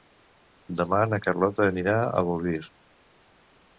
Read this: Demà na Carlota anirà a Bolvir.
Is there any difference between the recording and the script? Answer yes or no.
no